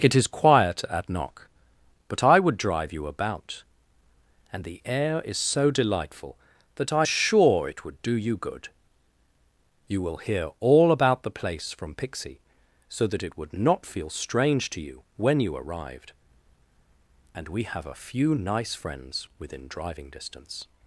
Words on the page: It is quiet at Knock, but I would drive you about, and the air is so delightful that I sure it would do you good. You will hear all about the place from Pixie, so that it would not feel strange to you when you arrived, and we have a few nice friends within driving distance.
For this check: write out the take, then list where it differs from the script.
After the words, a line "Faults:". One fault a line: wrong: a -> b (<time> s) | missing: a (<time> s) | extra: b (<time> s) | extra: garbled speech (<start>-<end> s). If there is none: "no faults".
It is quiet at Knock, but I would drive you about, and the air is so delightful that I sure it would do you good. You will hear all about the place from Pixie, so that it would not feel strange to you when you arrived, and we have a few nice friends within driving distance.
Faults:
no faults